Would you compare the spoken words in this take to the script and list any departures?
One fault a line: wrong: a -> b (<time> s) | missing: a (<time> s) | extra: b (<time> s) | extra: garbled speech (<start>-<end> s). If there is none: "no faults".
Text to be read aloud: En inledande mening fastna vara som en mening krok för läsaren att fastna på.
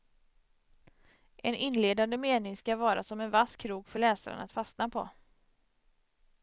wrong: fastna -> ska (2.6 s)
wrong: mening -> vass (3.3 s)